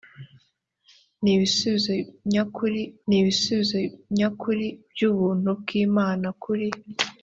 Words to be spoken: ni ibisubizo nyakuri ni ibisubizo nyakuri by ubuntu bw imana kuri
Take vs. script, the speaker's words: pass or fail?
pass